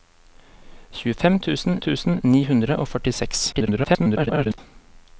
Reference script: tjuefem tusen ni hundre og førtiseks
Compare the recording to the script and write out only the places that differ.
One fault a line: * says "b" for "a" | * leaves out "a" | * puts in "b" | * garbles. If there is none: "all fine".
* puts in "tusen"
* garbles